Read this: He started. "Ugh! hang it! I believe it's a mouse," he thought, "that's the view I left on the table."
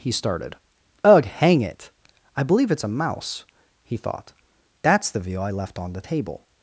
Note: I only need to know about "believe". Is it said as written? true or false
true